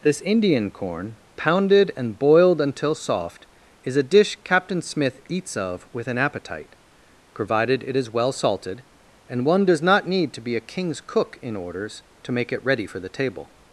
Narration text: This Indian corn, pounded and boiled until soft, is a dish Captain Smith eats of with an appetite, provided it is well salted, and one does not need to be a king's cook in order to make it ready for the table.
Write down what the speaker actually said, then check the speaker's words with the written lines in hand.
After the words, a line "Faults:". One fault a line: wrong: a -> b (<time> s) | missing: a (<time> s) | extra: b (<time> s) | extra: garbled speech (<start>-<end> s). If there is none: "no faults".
This Indian corn, pounded and boiled until soft, is a dish Captain Smith eats of with an appetite, provided it is well salted, and one does not need to be a king's cook in orders to make it ready for the table.
Faults:
wrong: order -> orders (11.6 s)